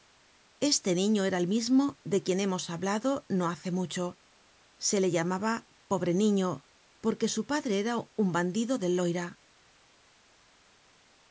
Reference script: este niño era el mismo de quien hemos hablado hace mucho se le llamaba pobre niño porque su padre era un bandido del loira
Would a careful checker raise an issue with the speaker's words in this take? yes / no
yes